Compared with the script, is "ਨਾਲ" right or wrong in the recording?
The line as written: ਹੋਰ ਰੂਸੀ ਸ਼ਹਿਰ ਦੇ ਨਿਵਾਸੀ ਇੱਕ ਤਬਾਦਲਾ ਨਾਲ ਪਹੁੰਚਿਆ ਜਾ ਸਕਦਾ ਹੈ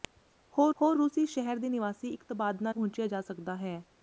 wrong